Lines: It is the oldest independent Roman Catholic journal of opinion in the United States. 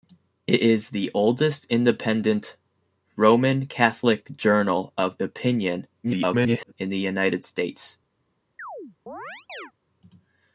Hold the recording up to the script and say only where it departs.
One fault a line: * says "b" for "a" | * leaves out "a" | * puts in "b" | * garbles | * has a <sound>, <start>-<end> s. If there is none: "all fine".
* garbles
* has a chirp, 8.6-9.7 s